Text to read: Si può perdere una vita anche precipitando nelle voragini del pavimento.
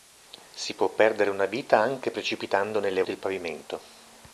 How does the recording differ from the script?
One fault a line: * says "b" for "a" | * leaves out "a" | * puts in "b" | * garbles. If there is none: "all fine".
* leaves out "voragini"